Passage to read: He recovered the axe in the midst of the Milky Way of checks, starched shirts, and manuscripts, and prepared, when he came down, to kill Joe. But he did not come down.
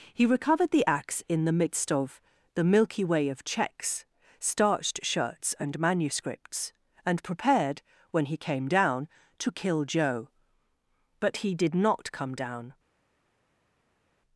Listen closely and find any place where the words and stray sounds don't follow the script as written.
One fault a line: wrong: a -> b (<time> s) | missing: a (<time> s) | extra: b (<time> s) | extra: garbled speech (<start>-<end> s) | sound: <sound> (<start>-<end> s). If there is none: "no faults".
no faults